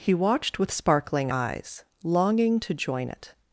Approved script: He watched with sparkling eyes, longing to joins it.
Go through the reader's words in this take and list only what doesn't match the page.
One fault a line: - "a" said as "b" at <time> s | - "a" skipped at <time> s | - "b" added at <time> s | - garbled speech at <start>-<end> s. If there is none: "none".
- "joins" said as "join" at 2.7 s